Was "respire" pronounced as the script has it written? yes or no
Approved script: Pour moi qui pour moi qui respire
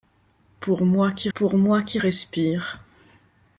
yes